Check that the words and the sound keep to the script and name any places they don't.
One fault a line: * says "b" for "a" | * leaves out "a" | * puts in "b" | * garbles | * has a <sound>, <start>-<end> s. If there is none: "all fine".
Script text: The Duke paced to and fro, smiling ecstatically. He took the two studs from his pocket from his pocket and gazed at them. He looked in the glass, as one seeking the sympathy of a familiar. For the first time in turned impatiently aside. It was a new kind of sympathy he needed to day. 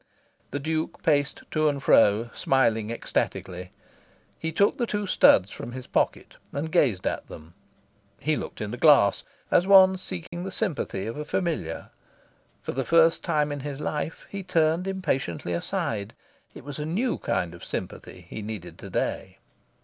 * leaves out "from his pocket"
* has a dropout, 10.3-10.3 s
* puts in "his life he"